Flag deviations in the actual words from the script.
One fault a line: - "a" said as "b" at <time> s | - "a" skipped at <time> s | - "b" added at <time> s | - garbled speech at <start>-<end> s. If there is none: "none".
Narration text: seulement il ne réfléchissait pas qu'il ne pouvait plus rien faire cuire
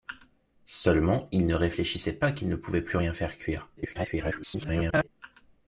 - garbled speech at 3.8-5.1 s